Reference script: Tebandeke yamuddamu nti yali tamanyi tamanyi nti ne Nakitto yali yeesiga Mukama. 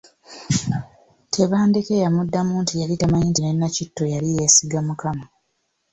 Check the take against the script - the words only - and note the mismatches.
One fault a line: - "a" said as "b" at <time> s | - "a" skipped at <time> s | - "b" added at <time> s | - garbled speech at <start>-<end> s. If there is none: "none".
- "tamanyi" skipped at 3.3 s